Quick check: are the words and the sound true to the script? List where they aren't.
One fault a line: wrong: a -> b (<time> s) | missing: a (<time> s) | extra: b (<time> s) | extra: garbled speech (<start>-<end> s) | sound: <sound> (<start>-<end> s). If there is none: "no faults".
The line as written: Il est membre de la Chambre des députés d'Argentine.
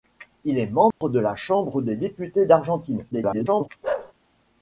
sound: dropout (0.9-1.0 s)
extra: garbled speech (3.1-3.7 s)
sound: bark (3.8-4.1 s)